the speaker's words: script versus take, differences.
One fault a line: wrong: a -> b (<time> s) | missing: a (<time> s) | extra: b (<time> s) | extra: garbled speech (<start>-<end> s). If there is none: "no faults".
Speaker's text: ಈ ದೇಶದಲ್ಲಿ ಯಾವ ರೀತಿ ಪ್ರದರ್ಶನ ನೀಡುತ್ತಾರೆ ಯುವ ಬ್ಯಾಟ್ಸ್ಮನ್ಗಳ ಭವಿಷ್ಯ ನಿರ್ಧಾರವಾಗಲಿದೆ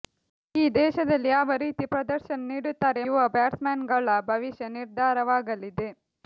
no faults